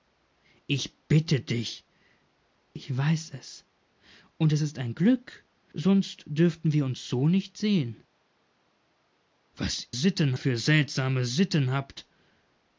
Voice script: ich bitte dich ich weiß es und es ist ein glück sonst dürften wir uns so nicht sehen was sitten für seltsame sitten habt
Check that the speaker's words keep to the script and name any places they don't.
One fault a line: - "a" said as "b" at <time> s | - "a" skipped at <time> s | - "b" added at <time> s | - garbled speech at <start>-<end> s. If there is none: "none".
none